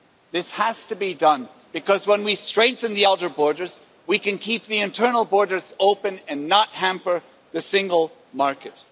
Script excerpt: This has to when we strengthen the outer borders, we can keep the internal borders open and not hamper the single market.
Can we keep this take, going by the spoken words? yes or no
no